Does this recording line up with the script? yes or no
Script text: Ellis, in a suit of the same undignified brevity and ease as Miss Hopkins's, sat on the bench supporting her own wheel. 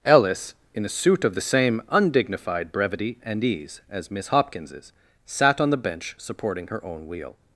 yes